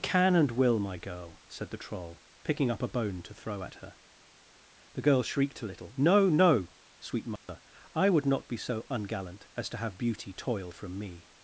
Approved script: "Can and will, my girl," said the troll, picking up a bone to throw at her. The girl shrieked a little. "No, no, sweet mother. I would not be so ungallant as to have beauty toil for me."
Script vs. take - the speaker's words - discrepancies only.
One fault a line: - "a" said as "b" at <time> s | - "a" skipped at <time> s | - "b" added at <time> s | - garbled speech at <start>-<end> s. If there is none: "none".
- "for" said as "from" at 10.7 s